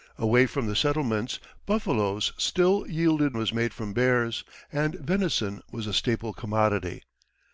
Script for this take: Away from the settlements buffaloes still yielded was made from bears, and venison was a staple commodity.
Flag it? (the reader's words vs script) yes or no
no